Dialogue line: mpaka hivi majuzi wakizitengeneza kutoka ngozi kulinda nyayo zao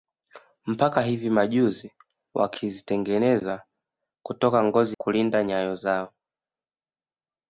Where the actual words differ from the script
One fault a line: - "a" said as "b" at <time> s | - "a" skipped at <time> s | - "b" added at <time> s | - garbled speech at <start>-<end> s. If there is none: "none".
none